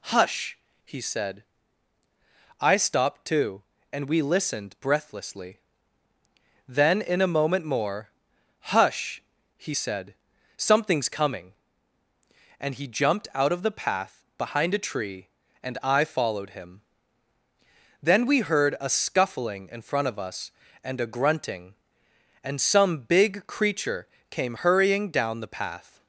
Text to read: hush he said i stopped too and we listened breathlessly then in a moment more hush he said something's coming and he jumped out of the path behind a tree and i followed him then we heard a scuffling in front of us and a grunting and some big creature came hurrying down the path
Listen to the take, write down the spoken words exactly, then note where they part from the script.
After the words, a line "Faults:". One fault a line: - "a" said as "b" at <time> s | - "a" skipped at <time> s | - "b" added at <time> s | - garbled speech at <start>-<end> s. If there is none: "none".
hush he said i stopped too and we listened breathlessly then in a moment more hush he said something's coming and he jumped out of the path behind a tree and i followed him then we heard a scuffling in front of us and a grunting and some big creature came hurrying down the path
Faults:
none